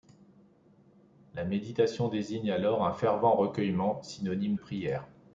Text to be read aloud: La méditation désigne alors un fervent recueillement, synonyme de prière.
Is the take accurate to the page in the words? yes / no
no